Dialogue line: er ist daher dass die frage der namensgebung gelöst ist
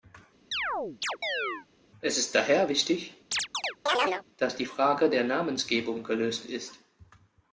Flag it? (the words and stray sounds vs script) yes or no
yes